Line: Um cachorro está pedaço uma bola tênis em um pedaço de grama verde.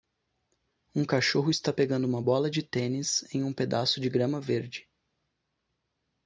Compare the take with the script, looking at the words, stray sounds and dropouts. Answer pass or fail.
fail